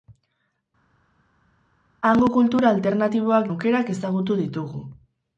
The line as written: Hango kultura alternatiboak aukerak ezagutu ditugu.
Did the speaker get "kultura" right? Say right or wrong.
right